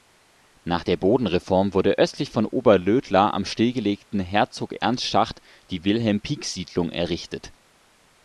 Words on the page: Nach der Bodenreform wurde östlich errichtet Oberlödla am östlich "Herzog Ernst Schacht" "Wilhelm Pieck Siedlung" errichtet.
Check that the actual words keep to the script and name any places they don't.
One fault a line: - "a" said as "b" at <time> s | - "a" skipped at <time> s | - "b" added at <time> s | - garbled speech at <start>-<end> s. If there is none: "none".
- "errichtet" said as "von" at 2.3 s
- "östlich" said as "stillgelegten" at 3.4 s
- "die" added at 5.7 s